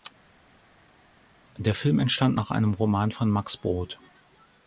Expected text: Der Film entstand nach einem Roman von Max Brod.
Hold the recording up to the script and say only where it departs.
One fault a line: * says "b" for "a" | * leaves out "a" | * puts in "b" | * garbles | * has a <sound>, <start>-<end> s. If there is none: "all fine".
all fine